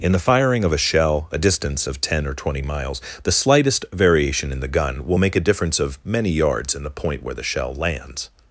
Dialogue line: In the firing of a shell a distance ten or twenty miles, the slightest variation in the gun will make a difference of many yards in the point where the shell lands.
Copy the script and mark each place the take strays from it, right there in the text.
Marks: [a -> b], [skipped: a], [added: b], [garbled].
In the firing of a shell a distance [added: of] ten or twenty miles, the slightest variation in the gun will make a difference of many yards in the point where the shell lands.